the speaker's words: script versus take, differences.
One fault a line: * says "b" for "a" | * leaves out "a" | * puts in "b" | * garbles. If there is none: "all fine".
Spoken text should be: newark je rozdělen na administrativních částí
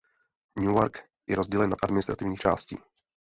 all fine